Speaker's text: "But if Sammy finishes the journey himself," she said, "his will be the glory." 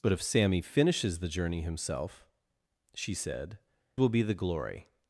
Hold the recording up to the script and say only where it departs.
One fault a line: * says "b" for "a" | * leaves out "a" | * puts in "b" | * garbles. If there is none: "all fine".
* leaves out "his"